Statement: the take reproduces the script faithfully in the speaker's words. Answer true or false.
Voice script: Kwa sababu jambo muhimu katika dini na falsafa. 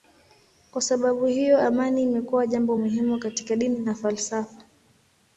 false